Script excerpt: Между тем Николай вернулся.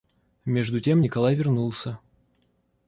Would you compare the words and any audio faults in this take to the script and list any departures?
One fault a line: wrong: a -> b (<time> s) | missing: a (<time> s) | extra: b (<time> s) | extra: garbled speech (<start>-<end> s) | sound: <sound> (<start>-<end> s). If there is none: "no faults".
no faults